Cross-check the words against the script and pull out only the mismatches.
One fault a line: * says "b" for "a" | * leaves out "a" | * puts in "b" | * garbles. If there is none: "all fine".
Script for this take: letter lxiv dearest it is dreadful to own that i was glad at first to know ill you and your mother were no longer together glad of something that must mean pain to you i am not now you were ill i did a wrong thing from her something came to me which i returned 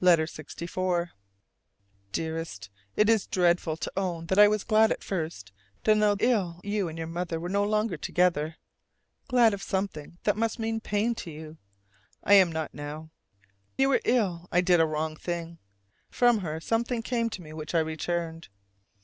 all fine